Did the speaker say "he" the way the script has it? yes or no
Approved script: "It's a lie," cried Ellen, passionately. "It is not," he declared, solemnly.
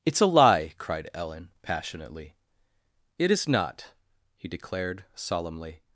yes